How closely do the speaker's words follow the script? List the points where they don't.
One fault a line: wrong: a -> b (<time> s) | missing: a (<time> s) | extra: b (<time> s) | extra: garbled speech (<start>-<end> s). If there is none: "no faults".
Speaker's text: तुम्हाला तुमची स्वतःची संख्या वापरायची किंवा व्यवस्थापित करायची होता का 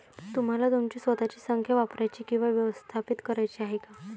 wrong: होता -> आहे (3.6 s)